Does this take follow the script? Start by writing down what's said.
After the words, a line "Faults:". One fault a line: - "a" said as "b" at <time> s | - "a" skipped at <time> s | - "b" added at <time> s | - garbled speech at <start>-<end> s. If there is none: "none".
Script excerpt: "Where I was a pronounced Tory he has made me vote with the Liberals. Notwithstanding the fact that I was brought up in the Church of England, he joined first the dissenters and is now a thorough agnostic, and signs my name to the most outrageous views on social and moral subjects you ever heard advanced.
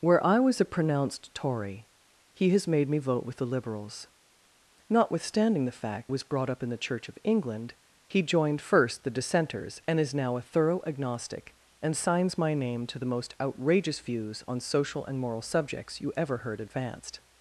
"Where I was a pronounced Tory he has made me vote with the Liberals. Notwithstanding the fact was brought up in the Church of England, he joined first the dissenters and is now a thorough agnostic, and signs my name to the most outrageous views on social and moral subjects you ever heard advanced.
Faults:
- "that I" skipped at 6.1 s